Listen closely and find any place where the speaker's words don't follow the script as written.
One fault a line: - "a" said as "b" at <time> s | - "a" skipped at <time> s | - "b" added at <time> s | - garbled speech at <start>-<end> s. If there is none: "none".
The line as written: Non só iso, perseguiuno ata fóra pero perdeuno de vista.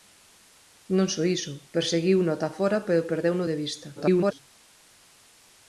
- garbled speech at 4.0-4.4 s